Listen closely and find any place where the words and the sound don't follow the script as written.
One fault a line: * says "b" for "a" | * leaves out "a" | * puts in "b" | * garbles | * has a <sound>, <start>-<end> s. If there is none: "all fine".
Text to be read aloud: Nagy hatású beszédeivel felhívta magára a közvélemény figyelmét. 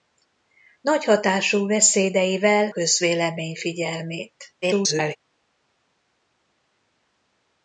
* leaves out "felhívta magára a"
* garbles